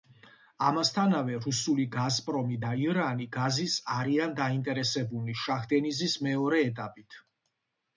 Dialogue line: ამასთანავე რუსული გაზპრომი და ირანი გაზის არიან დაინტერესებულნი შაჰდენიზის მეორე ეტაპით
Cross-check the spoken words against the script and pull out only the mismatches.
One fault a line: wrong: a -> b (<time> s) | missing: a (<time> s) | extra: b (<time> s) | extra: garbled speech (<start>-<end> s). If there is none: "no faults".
no faults